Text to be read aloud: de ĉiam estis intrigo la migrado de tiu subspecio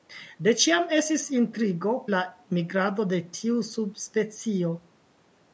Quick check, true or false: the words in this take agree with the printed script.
true